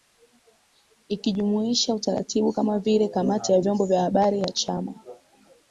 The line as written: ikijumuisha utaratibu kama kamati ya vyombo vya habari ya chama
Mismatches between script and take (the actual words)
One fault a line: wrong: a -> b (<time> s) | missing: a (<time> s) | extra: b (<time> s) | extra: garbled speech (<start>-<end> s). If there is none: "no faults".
extra: vile (2.8 s)